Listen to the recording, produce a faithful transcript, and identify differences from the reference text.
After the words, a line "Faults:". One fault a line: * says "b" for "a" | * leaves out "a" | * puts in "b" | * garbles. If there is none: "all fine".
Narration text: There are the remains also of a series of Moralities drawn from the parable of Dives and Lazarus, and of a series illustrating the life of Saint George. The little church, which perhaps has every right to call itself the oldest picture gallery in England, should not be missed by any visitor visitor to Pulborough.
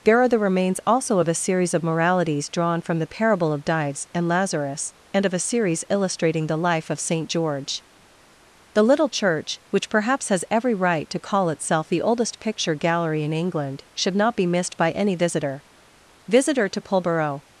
There are the remains also of a series of Moralities drawn from the parable of Dives and Lazarus, and of a series illustrating the life of Saint George. The little church, which perhaps has every right to call itself the oldest picture gallery in England, should not be missed by any visitor visitor to Pulborough.
Faults:
all fine